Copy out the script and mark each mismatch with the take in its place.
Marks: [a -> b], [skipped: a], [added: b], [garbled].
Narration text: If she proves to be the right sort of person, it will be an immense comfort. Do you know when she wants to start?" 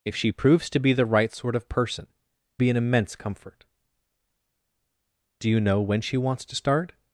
If she proves to be the right sort of person, [skipped: it will] be an immense comfort. Do you know when she wants to start?"